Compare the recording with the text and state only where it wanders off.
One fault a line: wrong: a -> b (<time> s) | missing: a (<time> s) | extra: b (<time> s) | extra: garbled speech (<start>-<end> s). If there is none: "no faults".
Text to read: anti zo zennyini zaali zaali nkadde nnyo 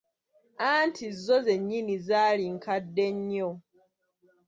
missing: zaali (2.4 s)